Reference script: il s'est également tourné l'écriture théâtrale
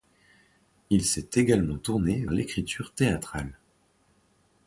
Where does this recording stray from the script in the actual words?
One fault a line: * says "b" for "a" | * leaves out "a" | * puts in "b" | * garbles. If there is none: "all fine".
all fine